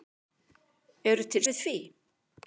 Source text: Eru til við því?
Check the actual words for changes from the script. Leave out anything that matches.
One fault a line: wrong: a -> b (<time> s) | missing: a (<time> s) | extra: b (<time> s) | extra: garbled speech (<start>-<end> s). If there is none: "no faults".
no faults